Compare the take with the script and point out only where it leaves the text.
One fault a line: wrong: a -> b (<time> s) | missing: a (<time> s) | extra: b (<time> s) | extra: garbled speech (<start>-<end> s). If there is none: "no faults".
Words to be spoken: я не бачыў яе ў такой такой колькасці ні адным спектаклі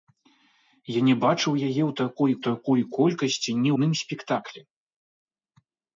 no faults